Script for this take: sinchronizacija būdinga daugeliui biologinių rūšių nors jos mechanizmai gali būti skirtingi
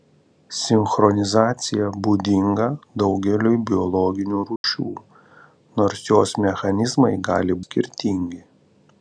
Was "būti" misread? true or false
true